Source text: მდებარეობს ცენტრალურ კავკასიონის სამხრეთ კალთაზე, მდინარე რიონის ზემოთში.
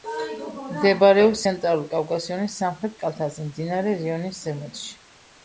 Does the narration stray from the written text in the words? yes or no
no